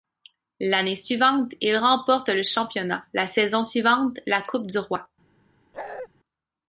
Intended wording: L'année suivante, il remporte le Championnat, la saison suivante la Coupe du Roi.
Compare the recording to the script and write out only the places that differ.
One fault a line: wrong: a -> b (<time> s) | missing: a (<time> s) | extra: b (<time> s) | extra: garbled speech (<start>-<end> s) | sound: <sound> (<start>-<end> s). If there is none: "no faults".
sound: bark (5.7-6.1 s)